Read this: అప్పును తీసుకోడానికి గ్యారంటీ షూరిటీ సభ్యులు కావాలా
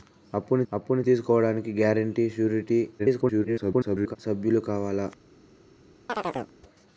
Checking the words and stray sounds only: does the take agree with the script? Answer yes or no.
no